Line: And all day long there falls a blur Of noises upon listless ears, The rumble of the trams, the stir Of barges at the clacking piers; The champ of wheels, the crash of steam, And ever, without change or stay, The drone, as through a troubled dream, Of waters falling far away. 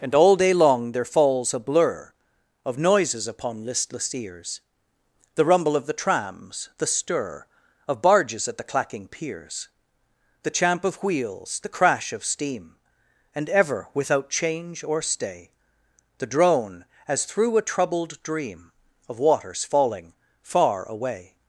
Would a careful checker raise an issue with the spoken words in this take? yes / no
no